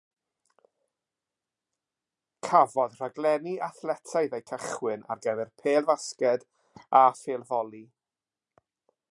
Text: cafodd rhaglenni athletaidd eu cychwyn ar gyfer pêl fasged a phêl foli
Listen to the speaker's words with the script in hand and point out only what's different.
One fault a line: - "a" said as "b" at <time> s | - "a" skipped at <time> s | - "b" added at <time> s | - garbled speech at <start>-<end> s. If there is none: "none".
none